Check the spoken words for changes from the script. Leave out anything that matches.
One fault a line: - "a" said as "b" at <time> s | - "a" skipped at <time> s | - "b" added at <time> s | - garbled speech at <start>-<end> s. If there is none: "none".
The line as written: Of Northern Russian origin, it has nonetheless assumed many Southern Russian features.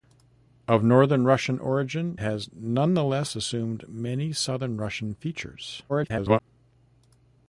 - "it" skipped at 2.2 s
- garbled speech at 5.9-6.4 s